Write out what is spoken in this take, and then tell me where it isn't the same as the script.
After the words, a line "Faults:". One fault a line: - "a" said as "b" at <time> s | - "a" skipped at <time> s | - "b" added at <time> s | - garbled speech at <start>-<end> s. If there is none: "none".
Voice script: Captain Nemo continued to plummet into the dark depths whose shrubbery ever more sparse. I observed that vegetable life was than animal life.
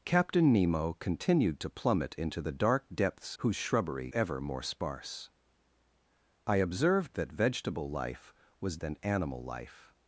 Captain Nemo continued to plummet into the dark depths whose shrubbery ever more sparse. I observed that vegetable life was than animal life.
Faults:
none